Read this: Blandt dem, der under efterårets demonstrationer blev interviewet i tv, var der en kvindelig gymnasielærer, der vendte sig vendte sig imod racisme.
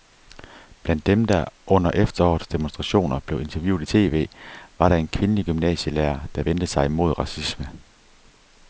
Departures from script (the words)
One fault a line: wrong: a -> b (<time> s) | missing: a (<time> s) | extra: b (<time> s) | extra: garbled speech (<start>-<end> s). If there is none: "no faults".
missing: vendte sig (6.9 s)